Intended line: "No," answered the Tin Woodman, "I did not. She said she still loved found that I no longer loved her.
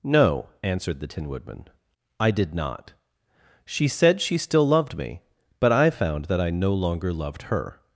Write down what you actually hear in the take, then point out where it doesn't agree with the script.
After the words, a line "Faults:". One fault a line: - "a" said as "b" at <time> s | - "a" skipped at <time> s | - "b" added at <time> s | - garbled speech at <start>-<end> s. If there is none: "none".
"No," answered the Tin Woodman, "I did not. She said she still loved me, but I found that I no longer loved her.
Faults:
- "me but I" added at 5.0 s